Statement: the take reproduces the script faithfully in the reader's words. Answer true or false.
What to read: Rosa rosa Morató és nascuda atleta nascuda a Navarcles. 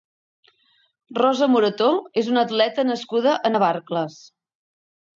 false